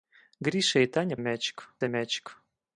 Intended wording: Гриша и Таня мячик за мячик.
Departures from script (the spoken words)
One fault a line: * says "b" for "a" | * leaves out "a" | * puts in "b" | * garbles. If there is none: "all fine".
all fine